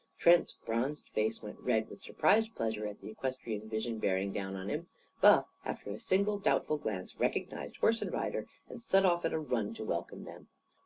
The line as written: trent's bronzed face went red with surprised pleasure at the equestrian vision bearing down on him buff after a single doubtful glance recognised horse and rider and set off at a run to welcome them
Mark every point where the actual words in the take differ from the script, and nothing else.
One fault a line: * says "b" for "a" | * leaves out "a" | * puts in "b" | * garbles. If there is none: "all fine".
all fine